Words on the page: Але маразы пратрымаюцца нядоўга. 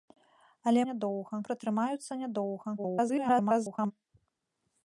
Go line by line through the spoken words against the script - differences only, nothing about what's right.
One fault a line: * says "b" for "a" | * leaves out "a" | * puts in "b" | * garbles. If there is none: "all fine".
* says "нядоўга" for "маразы"
* garbles